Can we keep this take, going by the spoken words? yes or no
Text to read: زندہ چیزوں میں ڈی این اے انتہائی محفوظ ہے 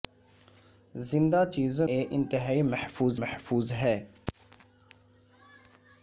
no